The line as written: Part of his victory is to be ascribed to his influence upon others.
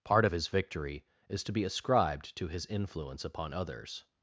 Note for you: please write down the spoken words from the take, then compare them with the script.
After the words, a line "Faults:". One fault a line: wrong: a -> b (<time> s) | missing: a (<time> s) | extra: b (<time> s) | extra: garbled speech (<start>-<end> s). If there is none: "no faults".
Part of his victory is to be ascribed to his influence upon others.
Faults:
no faults